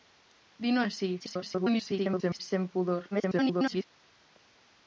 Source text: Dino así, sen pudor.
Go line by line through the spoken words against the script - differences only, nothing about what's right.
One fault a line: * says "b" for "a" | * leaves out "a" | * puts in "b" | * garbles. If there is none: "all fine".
* garbles
* garbles